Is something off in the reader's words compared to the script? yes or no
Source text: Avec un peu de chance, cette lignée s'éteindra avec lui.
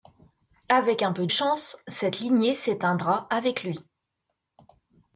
yes